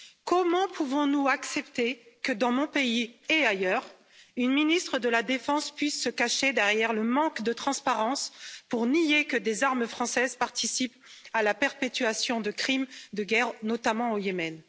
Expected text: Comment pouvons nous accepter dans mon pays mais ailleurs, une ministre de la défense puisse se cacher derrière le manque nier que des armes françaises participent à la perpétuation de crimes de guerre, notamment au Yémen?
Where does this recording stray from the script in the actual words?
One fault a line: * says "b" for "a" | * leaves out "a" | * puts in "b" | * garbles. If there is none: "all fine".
* puts in "que"
* says "et" for "mais"
* puts in "de transparence pour"